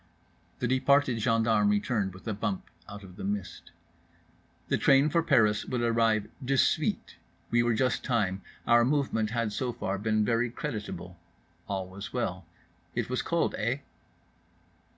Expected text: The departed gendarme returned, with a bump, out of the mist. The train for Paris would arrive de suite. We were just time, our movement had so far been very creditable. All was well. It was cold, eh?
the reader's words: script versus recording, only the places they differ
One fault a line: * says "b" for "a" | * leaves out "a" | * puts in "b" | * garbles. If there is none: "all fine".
all fine